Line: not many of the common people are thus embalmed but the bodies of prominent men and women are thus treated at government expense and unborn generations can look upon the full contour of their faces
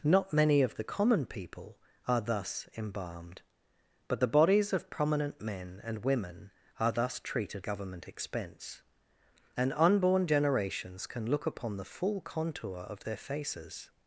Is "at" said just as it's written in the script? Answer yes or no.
no